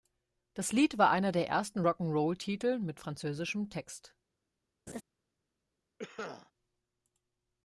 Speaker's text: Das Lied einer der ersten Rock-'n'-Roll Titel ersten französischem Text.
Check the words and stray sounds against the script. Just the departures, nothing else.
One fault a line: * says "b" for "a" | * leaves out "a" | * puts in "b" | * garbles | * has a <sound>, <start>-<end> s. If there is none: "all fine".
* puts in "war"
* says "mit" for "ersten"
* has a laugh, 4.9-5.0 s
* has a cough, 6.0-6.5 s